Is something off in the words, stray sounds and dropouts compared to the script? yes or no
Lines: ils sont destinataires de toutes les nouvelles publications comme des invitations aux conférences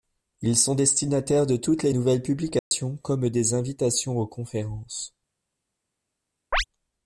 yes